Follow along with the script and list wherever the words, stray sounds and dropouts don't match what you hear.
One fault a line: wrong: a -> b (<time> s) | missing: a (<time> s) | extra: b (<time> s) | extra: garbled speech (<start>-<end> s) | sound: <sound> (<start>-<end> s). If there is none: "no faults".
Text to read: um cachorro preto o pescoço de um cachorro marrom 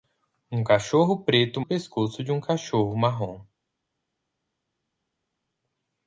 no faults